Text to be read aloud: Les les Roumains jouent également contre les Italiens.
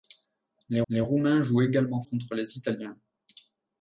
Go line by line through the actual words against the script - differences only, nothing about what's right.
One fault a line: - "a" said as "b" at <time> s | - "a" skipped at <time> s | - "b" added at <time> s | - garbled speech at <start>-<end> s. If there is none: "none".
none